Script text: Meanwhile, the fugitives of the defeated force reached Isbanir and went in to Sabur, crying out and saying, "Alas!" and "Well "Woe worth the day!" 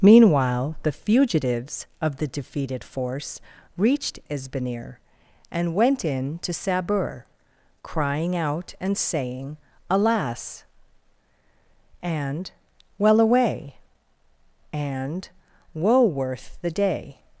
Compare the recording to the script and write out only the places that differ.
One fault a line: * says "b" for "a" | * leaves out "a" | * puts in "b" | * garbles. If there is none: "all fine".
* puts in "away and"